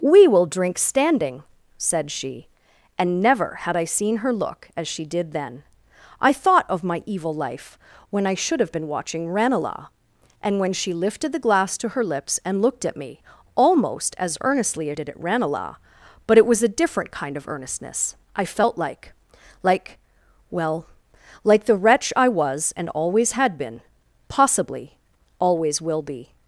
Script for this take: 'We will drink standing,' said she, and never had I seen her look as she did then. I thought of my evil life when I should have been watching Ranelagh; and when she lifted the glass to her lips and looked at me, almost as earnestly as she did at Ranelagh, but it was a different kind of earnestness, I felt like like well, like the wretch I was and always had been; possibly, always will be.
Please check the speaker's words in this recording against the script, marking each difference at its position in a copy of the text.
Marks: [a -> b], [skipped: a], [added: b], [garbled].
'We will drink standing,' said she, and never had I seen her look as she did then. I thought of my evil life when I should have been watching Ranelagh; and when she lifted the glass to her lips and looked at me, almost as earnestly as [skipped: she] did at Ranelagh, but it was a different kind of earnestness, I felt like like well, like the wretch I was and always had been; possibly, always will be.